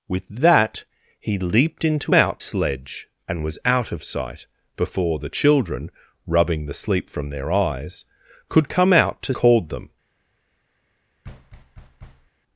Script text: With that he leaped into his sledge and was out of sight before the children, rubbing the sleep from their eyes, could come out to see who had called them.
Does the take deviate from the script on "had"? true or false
true